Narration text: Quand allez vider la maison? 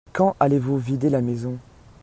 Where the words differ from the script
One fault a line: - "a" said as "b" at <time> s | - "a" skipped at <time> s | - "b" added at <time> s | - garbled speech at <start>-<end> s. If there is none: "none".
- "vous" added at 0.6 s